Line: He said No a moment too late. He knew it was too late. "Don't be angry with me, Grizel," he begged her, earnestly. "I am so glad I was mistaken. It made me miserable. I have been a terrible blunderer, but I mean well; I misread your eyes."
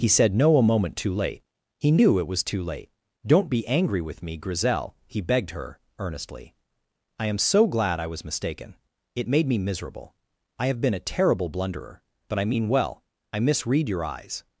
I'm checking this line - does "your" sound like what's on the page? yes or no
yes